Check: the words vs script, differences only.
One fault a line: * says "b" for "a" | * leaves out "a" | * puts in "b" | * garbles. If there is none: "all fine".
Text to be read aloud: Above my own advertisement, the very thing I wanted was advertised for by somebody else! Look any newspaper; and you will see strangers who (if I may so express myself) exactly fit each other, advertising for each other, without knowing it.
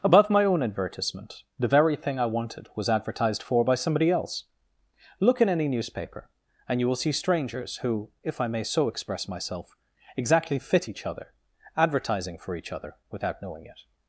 * puts in "in"